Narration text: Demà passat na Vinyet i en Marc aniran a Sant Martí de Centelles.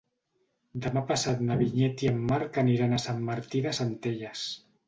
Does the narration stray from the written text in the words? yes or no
no